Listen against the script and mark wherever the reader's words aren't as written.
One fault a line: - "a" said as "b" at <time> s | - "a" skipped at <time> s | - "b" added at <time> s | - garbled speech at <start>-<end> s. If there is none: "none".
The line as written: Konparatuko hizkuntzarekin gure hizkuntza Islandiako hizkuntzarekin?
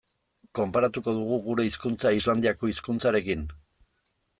- "hizkuntzarekin" said as "dugu" at 1.2 s